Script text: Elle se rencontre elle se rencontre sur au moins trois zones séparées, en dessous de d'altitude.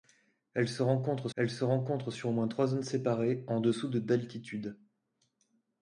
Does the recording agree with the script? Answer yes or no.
yes